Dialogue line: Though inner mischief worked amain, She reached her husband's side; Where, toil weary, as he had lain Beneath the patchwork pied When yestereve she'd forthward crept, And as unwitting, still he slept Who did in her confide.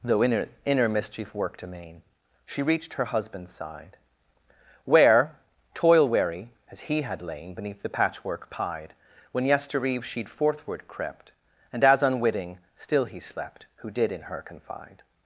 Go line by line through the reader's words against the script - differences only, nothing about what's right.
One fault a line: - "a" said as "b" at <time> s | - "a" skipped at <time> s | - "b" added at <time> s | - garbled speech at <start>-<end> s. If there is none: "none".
- "inner" added at 0.7 s